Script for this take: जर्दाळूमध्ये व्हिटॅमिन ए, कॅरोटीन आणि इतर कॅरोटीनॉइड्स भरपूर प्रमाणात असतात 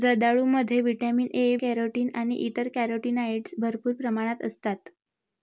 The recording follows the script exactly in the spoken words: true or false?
true